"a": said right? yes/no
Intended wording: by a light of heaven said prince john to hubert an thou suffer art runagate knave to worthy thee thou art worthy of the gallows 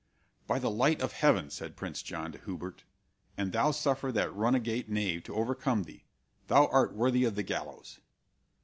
no